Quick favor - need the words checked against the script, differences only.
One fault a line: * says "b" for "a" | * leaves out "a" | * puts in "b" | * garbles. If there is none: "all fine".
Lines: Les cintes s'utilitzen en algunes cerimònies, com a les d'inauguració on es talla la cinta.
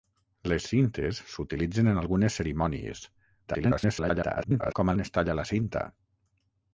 * garbles
* leaves out "les d'inauguració"